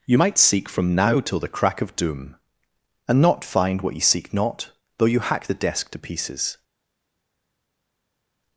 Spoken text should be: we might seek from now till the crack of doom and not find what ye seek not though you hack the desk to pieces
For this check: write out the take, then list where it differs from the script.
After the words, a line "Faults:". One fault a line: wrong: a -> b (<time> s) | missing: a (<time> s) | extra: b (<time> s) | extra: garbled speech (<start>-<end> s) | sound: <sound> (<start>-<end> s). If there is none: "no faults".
you might seek from now till the crack of doom and not find what ye seek not though you hack the desk to pieces
Faults:
wrong: we -> you (0.1 s)